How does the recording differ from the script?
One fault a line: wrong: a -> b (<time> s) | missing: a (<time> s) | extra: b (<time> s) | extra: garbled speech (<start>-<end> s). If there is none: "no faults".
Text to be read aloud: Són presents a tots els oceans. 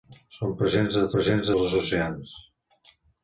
wrong: tots -> presents (1.1 s)